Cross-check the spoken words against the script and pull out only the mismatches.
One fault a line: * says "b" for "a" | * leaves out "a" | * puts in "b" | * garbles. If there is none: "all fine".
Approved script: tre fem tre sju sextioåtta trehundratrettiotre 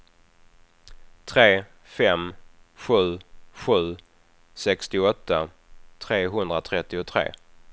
* says "sju" for "tre"